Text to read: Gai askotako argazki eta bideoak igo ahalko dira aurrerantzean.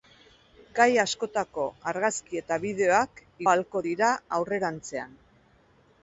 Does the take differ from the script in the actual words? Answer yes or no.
yes